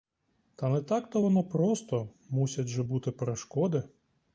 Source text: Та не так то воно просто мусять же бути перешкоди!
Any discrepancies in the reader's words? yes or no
no